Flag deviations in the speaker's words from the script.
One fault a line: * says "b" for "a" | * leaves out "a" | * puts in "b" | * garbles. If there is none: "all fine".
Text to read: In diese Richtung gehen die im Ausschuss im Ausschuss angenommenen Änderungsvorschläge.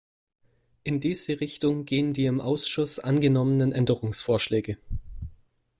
* leaves out "im Ausschuss"